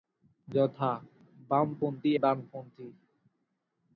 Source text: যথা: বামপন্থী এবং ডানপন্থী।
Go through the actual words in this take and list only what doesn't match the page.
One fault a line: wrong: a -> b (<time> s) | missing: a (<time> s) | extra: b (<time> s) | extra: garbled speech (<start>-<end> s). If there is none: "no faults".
missing: এবং (2.1 s)